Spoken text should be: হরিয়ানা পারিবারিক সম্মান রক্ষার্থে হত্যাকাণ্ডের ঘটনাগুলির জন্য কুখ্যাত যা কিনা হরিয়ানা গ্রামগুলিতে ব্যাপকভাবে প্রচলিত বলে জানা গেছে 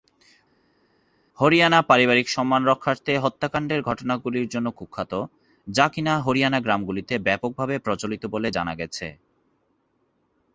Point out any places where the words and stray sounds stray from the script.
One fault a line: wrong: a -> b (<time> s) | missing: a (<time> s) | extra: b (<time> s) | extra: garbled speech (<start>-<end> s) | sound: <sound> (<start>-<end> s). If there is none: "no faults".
no faults